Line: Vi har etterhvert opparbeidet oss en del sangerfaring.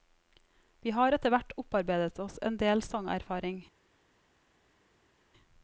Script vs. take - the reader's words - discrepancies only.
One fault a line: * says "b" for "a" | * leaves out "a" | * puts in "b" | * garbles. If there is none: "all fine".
all fine